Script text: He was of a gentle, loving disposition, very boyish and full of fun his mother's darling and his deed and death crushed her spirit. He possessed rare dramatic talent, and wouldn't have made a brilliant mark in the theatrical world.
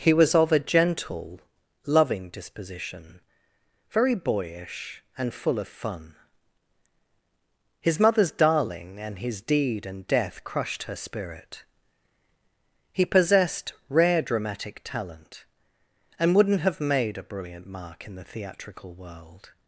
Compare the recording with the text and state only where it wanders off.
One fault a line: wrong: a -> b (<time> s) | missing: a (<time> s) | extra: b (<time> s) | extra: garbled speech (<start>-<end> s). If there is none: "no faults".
no faults